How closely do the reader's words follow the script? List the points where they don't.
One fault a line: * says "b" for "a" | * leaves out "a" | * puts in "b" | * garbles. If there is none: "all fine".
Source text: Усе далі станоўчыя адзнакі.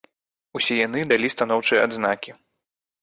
* puts in "яны"